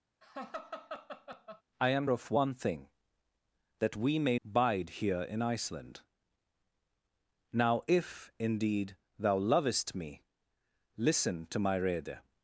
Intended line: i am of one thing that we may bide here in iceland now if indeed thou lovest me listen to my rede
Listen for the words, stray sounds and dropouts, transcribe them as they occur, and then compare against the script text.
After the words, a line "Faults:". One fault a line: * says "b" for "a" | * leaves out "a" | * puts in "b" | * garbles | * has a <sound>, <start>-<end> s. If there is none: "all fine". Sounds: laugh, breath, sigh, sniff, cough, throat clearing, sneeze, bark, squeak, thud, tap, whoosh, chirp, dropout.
i am of one thing that we may bide here in iceland now if indeed thou lovest me listen to my rede
Faults:
* has a laugh, 0.2-1.6 s